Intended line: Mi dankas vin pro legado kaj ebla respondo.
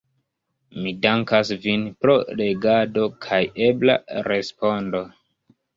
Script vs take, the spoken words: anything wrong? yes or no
no